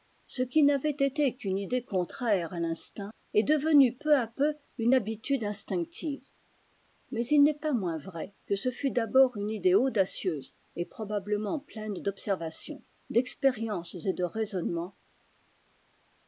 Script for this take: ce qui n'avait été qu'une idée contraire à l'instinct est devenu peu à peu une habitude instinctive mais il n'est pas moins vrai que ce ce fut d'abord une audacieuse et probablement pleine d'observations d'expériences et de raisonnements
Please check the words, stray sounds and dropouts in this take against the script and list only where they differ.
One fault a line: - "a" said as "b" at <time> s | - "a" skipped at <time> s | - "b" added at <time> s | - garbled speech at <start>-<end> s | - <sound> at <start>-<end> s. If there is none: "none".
- "ce" skipped at 8.7 s
- "idée" added at 9.5 s